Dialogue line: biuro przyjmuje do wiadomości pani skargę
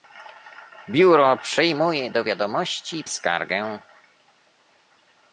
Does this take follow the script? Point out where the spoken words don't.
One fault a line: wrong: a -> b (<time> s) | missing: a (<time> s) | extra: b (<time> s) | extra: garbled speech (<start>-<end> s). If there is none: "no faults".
missing: pani (3.0 s)